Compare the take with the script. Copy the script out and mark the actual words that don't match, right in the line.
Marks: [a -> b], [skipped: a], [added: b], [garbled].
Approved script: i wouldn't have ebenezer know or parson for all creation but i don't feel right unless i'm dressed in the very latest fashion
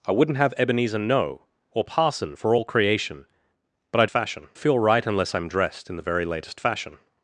i wouldn't have ebenezer know or parson for all creation but i [don't -> fashion] feel right unless i'm dressed in the very latest fashion